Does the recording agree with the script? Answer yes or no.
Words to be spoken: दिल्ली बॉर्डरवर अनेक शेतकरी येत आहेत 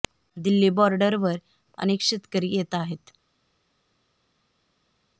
yes